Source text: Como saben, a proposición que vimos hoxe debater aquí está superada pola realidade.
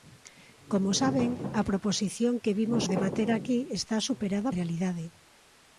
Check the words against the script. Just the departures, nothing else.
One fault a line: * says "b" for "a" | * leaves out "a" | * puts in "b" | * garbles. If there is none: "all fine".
* leaves out "hoxe"
* leaves out "pola"